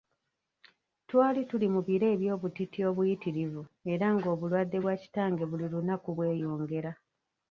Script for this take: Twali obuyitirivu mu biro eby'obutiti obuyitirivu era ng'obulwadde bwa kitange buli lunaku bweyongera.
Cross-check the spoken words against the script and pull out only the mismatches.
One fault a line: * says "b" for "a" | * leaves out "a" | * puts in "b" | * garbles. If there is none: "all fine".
* says "tuli" for "obuyitirivu"